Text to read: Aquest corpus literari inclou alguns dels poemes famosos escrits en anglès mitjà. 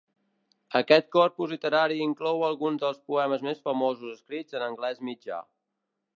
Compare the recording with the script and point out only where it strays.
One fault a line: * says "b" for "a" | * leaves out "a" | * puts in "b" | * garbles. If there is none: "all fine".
* puts in "més"